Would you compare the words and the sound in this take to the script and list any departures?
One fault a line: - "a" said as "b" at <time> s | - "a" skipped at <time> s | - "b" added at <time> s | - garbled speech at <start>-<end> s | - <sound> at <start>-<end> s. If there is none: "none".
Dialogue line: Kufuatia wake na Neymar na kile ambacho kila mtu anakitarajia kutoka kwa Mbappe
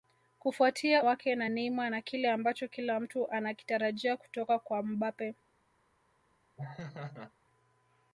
- laugh at 6.6-7.3 s